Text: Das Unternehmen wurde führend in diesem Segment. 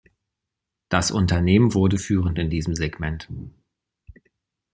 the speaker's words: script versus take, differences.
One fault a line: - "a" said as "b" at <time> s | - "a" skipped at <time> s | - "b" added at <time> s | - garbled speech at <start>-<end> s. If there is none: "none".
none